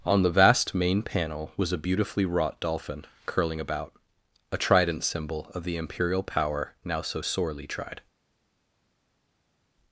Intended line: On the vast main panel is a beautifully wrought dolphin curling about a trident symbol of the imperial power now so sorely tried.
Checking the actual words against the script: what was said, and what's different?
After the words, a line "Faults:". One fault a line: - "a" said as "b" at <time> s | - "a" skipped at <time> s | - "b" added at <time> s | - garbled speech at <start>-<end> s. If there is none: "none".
On the vast main panel was a beautifully wrought dolphin curling about a trident symbol of the imperial power now so sorely tried.
Faults:
- "is" said as "was" at 1.6 s